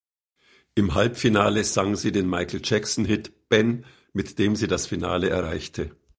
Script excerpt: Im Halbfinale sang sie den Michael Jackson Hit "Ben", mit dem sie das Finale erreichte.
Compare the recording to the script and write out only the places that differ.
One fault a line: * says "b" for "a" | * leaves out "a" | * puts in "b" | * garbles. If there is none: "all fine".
all fine